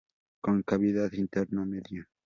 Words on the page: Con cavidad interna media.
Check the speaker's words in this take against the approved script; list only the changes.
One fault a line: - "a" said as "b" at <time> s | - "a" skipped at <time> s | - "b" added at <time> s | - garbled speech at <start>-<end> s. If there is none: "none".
none